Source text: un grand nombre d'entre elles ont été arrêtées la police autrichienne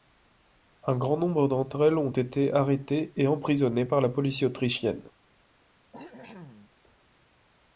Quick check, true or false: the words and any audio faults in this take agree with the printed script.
false